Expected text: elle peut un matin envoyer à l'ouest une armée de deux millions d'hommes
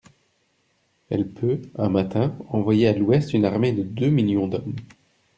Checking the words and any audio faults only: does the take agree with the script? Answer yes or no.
yes